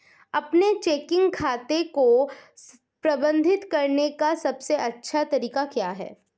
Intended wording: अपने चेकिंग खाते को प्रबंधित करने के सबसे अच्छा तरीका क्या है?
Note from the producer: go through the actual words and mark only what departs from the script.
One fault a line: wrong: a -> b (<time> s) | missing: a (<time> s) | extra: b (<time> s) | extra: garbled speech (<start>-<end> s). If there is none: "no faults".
wrong: के -> का (4.1 s)